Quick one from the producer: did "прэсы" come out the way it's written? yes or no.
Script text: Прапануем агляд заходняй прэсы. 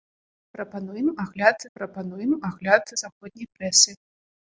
yes